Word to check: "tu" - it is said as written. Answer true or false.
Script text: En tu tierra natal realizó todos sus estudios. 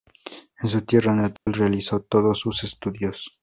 false